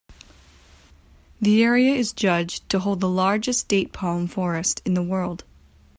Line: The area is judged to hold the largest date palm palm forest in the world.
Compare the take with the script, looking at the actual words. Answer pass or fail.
fail